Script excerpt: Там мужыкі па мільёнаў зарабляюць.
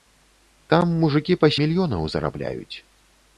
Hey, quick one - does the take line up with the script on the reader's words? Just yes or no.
yes